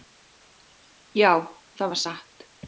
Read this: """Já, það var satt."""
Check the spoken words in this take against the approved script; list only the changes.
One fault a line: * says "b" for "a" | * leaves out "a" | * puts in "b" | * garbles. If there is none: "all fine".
all fine